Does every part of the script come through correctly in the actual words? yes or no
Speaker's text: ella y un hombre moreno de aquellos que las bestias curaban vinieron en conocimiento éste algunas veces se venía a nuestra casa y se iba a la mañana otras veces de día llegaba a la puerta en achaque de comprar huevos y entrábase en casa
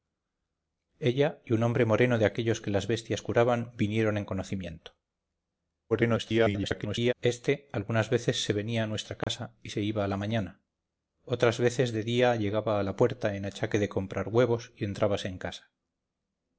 no